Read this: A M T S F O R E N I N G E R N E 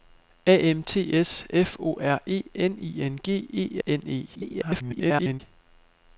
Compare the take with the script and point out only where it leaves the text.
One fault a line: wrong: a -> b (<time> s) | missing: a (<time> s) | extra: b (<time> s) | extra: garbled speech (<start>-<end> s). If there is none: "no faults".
missing: R (3.8 s)
extra: garbled speech (4.3-5.4 s)